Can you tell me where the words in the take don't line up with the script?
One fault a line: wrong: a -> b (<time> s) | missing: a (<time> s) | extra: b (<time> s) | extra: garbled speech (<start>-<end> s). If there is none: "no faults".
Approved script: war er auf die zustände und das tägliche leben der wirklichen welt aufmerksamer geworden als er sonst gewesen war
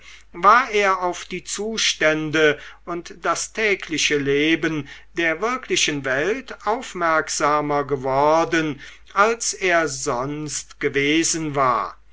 no faults